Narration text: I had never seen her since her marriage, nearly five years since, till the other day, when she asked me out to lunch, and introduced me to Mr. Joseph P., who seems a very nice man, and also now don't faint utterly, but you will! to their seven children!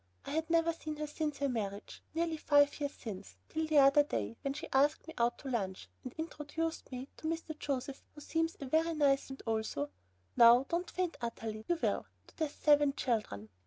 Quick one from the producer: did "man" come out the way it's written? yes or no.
no